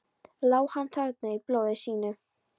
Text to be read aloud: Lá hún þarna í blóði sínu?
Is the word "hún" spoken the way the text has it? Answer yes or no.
no